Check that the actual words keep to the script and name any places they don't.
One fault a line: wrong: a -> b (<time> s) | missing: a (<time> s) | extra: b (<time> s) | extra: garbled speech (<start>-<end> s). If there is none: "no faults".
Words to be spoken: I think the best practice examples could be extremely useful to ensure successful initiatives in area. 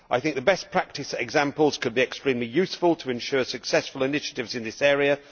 extra: this (4.6 s)